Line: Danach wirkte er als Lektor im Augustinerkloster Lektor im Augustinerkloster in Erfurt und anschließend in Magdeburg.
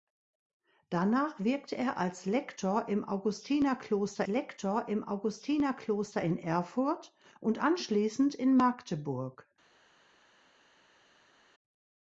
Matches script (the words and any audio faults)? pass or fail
pass